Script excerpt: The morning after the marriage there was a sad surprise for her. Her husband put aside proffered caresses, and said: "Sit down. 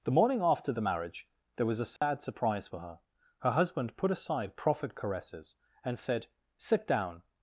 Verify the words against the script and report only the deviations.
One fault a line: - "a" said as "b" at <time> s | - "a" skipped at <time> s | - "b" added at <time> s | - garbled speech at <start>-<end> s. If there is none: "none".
none